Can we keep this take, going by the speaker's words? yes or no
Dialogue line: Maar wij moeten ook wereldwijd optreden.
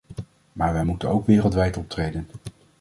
yes